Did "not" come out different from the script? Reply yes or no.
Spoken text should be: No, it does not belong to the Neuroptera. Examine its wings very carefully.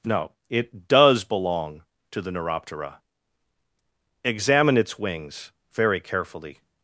yes